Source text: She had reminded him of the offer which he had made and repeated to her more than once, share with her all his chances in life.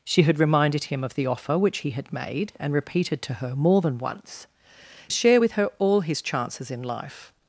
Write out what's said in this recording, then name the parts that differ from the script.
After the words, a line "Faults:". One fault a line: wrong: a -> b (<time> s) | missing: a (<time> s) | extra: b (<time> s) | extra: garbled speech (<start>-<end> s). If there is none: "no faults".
She had reminded him of the offer which he had made and repeated to her more than once, share with her all his chances in life.
Faults:
no faults